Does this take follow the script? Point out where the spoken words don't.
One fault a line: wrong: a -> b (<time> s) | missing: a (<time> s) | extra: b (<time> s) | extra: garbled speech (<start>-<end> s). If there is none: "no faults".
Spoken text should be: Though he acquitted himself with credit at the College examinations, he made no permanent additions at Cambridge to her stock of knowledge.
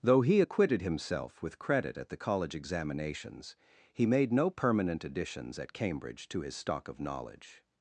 wrong: her -> his (6.4 s)